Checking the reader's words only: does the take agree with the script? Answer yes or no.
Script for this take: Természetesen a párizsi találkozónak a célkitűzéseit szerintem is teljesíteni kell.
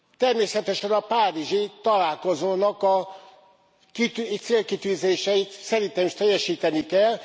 yes